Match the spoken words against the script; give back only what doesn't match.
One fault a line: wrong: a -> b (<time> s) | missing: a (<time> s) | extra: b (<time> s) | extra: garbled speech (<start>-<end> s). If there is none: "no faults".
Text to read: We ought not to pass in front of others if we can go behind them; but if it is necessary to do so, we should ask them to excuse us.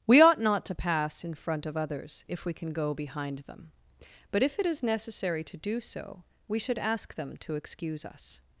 no faults